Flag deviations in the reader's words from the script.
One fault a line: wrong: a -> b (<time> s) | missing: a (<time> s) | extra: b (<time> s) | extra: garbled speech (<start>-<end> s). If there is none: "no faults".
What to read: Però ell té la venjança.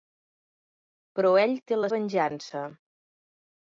no faults